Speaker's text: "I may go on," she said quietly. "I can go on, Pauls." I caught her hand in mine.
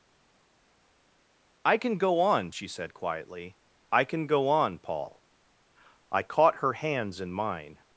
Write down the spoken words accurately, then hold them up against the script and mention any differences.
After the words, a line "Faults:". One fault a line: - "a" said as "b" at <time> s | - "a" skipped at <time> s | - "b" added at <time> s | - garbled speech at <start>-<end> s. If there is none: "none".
"I can go on," she said quietly. "I can go on, Paul." I caught her hands in mine.
Faults:
- "may" said as "can" at 1.8 s
- "Pauls" said as "Paul" at 4.8 s
- "hand" said as "hands" at 6.7 s